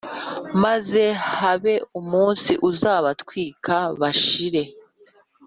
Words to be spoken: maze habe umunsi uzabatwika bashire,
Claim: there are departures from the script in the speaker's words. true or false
false